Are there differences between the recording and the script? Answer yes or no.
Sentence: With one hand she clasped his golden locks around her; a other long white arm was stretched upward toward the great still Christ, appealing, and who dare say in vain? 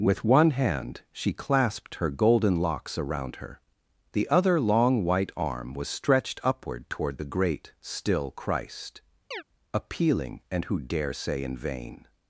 yes